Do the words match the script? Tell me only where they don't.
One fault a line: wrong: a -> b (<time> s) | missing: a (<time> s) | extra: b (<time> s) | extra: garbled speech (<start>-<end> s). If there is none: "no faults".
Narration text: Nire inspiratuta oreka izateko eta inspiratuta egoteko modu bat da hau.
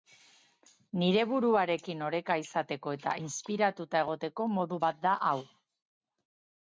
wrong: inspiratuta -> buruarekin (1.3 s)